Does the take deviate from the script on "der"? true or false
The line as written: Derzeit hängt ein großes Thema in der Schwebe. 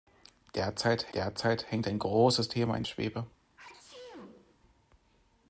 true